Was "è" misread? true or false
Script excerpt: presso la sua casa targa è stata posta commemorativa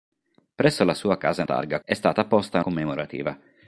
false